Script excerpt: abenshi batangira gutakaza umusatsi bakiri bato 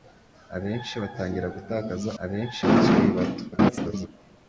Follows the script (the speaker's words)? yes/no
no